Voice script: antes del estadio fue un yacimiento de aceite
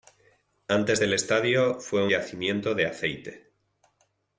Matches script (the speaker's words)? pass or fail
fail